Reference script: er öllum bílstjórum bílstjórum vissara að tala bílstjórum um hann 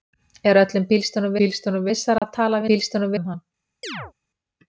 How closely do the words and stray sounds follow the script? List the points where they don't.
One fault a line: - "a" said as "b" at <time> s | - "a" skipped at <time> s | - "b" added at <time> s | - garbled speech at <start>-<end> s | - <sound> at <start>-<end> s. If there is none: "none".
- dropout at 2.2-2.2 s
- chirp at 3.8-4.1 s